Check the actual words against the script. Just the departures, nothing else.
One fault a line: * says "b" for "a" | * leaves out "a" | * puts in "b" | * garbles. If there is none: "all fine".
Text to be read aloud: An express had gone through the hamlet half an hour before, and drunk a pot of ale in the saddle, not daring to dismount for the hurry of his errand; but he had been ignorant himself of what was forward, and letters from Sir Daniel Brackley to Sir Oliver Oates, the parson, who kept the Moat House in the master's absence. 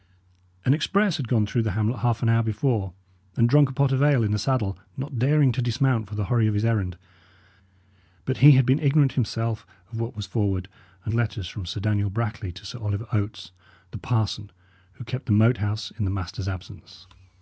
all fine